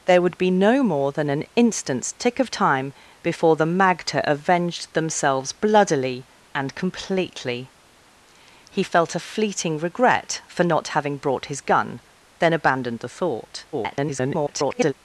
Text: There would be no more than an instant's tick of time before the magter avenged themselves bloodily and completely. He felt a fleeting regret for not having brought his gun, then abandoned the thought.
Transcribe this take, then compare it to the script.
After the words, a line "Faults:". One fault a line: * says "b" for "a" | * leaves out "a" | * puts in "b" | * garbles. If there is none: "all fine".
There would be no more than an instant's tick of time before the magter avenged themselves bloodily and completely. He felt a fleeting regret for not having brought his gun, then abandoned the thought. [garbled]
Faults:
* garbles